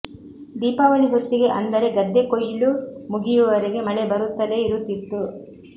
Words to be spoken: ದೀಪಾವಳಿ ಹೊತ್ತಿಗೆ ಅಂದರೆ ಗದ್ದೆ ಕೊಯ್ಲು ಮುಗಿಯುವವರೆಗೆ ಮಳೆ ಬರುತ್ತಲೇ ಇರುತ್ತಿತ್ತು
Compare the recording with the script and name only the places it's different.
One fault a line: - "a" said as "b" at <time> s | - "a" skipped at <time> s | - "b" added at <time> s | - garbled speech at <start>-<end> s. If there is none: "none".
none